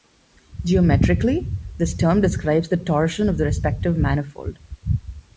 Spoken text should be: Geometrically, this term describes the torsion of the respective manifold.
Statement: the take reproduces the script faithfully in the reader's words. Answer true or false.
true